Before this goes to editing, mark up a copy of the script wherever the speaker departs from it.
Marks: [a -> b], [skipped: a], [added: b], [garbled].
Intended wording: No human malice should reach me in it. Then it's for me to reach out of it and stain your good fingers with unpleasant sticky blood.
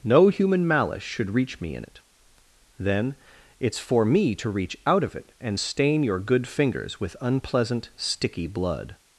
No human malice should reach me in it. Then it's for me to reach out of it and stain your good fingers with unpleasant sticky blood.